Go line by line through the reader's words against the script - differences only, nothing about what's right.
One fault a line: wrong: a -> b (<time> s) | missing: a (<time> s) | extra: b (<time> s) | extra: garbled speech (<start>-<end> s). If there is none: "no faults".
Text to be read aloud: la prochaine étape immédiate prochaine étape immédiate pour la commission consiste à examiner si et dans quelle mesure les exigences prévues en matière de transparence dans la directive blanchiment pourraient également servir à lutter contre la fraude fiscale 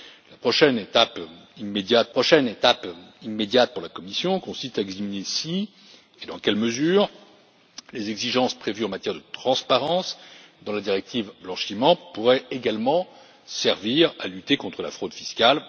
no faults